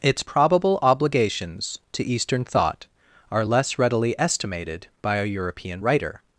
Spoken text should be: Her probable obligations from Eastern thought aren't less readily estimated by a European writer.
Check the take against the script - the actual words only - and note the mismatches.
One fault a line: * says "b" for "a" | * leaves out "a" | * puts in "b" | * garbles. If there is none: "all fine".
* says "Its" for "Her"
* says "to" for "from"
* says "are" for "aren't"